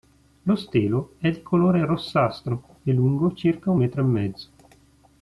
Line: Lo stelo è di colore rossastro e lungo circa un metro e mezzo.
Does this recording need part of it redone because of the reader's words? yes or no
no